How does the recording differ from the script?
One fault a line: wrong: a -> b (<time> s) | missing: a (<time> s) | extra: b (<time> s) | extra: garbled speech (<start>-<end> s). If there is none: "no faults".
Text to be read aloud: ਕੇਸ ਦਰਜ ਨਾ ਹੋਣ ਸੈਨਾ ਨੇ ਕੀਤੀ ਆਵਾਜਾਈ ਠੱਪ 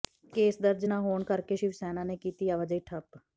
extra: ਕਰਕੇ ਸ਼ਿਵ (1.2 s)